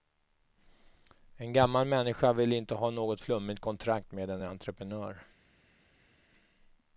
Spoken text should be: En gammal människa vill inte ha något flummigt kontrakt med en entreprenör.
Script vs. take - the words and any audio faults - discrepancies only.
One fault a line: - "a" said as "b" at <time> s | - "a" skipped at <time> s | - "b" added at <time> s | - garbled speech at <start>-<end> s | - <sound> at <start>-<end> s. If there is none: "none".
none